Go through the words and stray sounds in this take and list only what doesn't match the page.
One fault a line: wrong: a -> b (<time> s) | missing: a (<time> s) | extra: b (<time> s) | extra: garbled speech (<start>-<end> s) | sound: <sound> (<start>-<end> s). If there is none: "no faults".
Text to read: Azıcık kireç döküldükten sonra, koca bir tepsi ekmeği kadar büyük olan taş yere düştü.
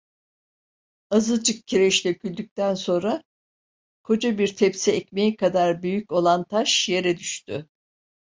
no faults